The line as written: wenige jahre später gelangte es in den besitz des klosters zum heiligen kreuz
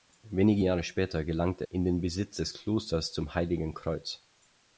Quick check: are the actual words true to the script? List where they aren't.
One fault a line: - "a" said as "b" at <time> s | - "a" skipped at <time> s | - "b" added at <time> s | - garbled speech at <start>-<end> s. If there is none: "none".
- "es" skipped at 1.7 s